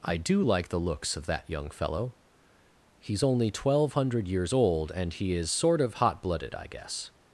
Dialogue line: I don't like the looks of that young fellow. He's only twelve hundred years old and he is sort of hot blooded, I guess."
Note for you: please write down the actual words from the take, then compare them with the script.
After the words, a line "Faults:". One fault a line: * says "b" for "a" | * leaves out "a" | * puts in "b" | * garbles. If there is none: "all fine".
I do like the looks of that young fellow. He's only twelve hundred years old and he is sort of hot blooded, I guess."
Faults:
* says "do" for "don't"